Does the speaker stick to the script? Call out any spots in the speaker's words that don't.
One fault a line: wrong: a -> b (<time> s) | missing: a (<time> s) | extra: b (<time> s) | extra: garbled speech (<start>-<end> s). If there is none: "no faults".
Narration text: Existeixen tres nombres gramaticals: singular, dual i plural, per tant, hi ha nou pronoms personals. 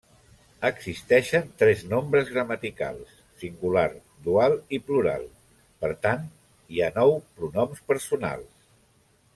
no faults